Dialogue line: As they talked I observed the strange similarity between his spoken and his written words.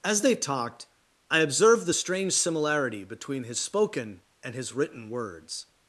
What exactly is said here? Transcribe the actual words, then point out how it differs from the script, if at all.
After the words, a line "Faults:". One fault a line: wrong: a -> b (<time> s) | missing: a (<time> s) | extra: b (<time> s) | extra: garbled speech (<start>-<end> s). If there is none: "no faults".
As they talked I observed the strange similarity between his spoken and his written words.
Faults:
no faults